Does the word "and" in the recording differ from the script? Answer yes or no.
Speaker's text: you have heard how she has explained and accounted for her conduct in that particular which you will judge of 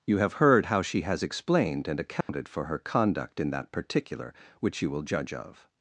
no